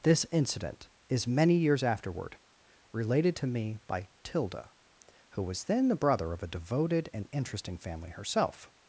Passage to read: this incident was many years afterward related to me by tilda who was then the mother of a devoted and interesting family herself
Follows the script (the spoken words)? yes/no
no